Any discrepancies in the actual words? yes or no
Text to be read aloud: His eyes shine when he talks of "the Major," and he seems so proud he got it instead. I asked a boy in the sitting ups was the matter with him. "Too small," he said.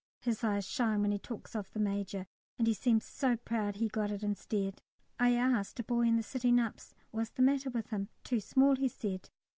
no